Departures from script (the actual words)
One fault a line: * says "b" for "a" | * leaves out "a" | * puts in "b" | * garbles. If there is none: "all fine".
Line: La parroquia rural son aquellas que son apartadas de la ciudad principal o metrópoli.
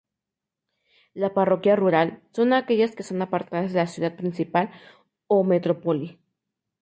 all fine